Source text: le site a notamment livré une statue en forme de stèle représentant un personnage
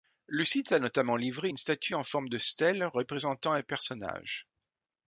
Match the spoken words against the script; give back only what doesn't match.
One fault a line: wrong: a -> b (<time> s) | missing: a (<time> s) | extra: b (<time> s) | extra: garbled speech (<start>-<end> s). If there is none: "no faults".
no faults